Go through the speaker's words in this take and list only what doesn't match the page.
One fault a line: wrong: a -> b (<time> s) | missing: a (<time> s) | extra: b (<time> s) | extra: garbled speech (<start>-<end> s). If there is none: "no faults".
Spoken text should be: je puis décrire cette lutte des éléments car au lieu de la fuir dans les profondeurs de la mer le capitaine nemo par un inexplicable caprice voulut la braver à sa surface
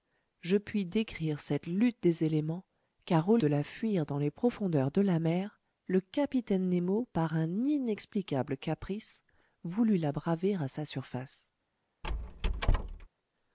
missing: lieu (3.4 s)